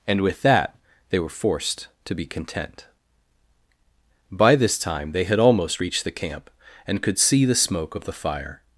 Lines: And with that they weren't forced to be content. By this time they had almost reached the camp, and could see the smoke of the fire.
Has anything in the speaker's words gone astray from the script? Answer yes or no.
yes